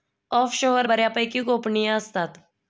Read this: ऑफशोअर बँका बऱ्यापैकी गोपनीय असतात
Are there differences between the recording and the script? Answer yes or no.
yes